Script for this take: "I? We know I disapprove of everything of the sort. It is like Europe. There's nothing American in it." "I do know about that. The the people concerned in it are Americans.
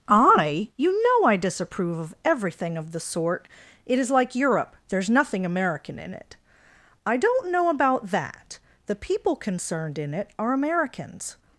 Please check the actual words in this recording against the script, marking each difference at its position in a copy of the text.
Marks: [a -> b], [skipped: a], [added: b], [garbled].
"I? [We -> You] know I disapprove of everything of the sort. It is like Europe. There's nothing American in it." "I [do -> don't] know about that. The [skipped: the] people concerned in it are Americans.